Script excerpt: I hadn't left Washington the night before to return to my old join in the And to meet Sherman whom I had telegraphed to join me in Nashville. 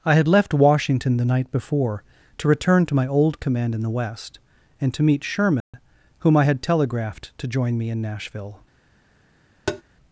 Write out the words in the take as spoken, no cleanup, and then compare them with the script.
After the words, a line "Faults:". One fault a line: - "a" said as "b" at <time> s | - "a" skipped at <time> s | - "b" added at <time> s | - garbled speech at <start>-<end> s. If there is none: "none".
I had left Washington the night before to return to my old command in the West and to meet Sherman whom I had telegraphed to join me in Nashville.
Faults:
- "hadn't" said as "had" at 0.1 s
- "join" said as "command" at 3.4 s
- "West" added at 3.9 s